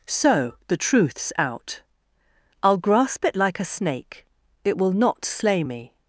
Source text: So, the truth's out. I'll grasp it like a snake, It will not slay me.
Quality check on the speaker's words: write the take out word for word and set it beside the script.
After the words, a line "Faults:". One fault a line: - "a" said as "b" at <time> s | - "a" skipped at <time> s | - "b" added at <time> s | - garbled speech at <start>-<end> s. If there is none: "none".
So, the truth's out. I'll grasp it like a snake, It will not slay me.
Faults:
none